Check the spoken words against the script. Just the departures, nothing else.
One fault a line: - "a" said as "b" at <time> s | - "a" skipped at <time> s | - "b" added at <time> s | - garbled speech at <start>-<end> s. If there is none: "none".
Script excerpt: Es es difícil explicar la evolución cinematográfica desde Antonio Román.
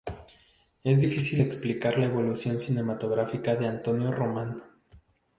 - "es" skipped at 1.0 s
- "desde" said as "de" at 3.6 s